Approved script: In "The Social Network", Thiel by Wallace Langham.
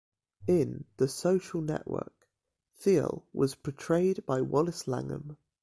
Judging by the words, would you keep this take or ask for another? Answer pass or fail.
fail